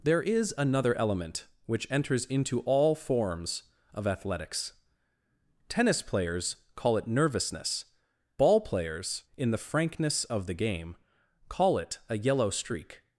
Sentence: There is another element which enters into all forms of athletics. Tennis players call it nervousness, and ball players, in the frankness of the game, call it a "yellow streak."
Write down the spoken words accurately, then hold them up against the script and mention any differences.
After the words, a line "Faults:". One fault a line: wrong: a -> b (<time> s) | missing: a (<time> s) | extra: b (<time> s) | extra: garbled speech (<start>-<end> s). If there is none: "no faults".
There is another element which enters into all forms of athletics. Tennis players call it nervousness, ball players, in the frankness of the game, call it a "yellow streak."
Faults:
missing: and (7.8 s)